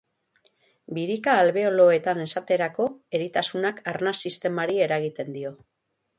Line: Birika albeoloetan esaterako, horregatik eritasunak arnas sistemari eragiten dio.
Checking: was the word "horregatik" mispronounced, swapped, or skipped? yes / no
yes